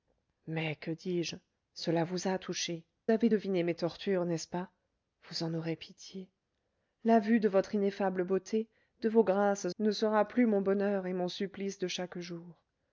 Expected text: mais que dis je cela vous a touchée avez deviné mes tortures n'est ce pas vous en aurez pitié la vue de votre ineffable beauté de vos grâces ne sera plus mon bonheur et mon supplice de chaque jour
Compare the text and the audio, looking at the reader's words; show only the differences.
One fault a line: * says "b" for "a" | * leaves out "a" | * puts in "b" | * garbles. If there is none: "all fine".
all fine